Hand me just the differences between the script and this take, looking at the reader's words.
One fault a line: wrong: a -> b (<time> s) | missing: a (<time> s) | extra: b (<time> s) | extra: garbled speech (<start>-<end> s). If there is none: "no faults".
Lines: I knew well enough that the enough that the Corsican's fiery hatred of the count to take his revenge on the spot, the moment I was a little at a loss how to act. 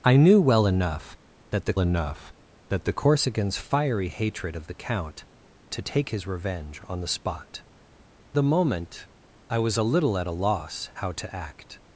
no faults